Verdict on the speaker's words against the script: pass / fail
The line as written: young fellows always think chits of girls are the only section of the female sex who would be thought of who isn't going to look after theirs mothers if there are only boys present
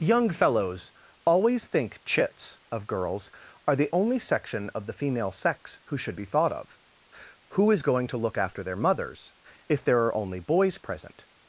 fail